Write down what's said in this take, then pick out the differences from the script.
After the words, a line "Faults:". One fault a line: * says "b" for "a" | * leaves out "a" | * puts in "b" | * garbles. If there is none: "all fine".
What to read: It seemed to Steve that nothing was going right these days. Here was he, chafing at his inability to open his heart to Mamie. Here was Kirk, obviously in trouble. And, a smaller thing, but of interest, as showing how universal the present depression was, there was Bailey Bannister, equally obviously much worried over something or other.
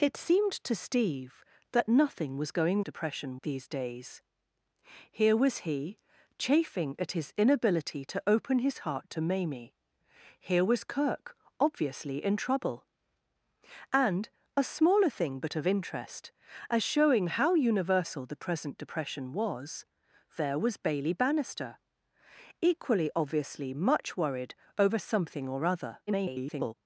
It seemed to Steve that nothing was going depression these days. Here was he, chafing at his inability to open his heart to Mamie. Here was Kirk, obviously in trouble. And, a smaller thing, but of interest, as showing how universal the present depression was, there was Bailey Bannister, equally obviously much worried over something or other. [garbled]
Faults:
* says "depression" for "right"
* garbles